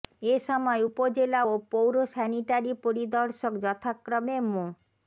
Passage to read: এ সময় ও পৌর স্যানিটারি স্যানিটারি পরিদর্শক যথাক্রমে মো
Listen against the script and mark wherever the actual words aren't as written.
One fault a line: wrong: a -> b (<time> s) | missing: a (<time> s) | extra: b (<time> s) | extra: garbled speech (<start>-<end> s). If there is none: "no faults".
extra: উপজেলা (0.9 s)
missing: স্যানিটারি (2.7 s)